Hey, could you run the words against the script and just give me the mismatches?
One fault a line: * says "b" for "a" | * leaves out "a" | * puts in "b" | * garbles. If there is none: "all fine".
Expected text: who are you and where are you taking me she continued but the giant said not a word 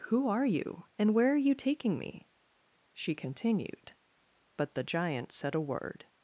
* leaves out "not"